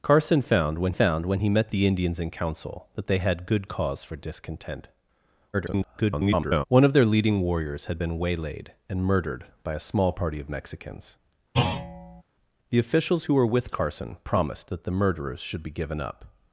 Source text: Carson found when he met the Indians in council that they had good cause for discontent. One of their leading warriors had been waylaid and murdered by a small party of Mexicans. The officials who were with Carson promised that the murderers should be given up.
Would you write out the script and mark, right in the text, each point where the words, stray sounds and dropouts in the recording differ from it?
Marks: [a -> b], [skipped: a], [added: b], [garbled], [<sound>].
Carson found when [added: found when] he met the Indians in council that they had good cause for discontent. [garbled] One of their leading warriors had been waylaid and murdered by a small party of Mexicans. [thud] The officials who were with Carson promised that the murderers should be given up.